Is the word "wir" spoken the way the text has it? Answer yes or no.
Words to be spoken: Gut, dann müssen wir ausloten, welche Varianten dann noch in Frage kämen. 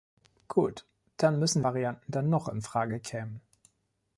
no